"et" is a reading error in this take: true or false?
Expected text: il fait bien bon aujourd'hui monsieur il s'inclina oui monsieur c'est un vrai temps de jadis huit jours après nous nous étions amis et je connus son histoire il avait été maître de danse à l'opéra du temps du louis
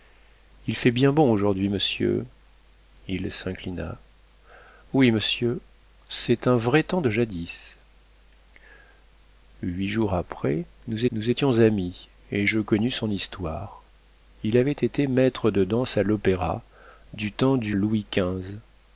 false